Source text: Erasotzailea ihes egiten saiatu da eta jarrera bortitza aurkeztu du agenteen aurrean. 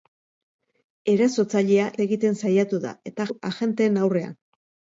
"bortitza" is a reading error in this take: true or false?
true